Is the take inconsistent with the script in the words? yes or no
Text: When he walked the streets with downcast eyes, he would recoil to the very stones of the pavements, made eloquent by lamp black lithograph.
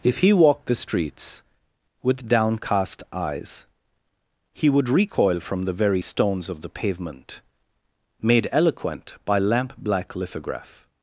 yes